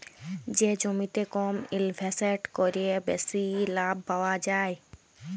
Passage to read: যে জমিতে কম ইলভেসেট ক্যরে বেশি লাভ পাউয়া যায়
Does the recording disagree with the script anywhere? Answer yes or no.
no